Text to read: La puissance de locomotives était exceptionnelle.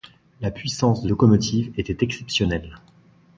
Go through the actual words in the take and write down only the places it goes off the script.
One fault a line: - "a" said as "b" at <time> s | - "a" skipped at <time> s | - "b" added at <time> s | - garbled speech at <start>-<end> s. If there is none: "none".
none